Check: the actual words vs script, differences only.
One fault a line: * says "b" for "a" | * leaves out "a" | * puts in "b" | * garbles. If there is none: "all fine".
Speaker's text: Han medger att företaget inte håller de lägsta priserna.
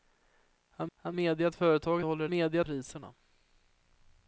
* puts in "han"
* leaves out "inte"
* says "medger" for "lägsta"